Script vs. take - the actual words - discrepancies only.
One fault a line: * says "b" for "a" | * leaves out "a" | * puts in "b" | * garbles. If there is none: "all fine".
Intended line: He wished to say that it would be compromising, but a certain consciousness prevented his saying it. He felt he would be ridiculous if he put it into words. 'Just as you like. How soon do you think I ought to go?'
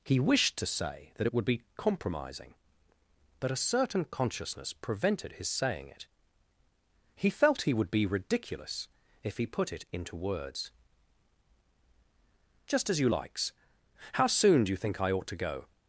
* says "likes" for "like"